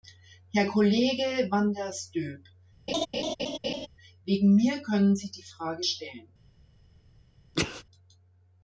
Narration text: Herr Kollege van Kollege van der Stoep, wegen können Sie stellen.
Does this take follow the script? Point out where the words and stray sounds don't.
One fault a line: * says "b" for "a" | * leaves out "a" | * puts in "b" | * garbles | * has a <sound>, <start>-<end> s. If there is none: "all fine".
* leaves out "Kollege van"
* has a laugh, 2.9-3.9 s
* puts in "mir"
* puts in "die Frage"
* has a sneeze, 7.5-7.8 s